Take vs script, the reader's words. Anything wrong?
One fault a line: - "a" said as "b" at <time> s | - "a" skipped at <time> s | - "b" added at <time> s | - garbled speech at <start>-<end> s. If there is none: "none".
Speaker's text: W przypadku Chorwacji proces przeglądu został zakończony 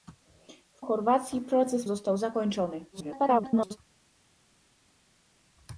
- "przypadku" skipped at 0.8 s
- "przeglądu" skipped at 1.9 s
- garbled speech at 2.9-3.8 s